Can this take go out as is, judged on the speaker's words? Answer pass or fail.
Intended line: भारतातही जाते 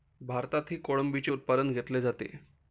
fail